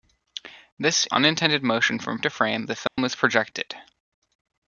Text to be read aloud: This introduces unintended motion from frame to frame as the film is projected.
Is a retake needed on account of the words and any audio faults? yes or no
yes